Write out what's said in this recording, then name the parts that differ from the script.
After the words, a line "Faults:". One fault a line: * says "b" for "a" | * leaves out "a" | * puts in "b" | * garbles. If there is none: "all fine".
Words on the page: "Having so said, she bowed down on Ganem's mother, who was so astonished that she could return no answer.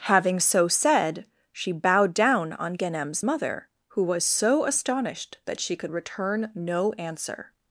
"Having so said, she bowed down on Ganem's mother, who was so astonished that she could return no answer.
Faults:
all fine